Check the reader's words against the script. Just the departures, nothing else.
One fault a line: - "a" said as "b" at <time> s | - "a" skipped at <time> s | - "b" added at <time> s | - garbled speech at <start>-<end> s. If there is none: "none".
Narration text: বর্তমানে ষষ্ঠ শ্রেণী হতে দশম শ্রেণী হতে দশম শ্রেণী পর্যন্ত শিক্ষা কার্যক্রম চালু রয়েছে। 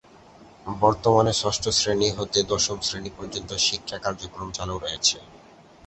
- "হতে দশম শ্রেণী" skipped at 3.1 s